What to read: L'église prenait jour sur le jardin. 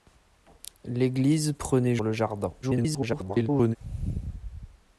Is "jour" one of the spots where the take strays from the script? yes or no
yes